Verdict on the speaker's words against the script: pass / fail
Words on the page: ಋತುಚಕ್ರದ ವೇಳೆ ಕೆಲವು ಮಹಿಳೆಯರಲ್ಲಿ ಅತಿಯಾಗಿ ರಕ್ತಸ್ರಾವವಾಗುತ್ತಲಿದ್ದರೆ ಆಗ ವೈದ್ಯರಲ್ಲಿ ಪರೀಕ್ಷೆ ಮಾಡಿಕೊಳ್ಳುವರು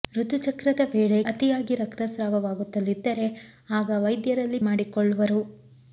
fail